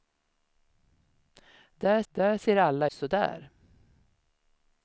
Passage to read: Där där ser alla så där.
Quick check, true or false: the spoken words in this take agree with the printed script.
true